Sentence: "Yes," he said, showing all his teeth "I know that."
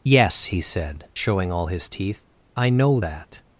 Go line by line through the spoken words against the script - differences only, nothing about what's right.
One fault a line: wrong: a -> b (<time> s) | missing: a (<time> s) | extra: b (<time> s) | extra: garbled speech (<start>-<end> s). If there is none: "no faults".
no faults